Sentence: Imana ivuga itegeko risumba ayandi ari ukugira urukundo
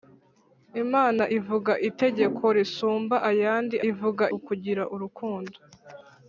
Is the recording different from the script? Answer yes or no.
yes